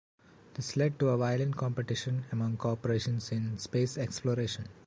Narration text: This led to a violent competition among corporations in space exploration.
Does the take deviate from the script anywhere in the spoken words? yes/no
no